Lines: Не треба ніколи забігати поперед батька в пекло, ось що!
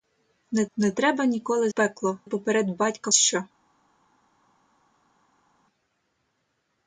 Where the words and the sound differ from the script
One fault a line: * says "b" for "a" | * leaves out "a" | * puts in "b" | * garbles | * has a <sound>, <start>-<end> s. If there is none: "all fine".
* puts in "не"
* says "пекло" for "забігати"
* leaves out "в пекло ось"